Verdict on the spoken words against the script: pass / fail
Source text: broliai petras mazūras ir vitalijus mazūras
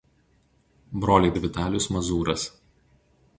fail